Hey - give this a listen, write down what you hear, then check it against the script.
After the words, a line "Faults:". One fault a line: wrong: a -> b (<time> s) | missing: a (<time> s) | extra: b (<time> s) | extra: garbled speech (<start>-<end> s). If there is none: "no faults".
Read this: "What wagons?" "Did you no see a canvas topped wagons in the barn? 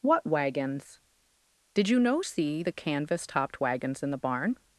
"What wagons?" "Did you no see the canvas topped wagons in the barn?
Faults:
wrong: a -> the (2.6 s)